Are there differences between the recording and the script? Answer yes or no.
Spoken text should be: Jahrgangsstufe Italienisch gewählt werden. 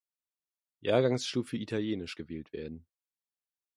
no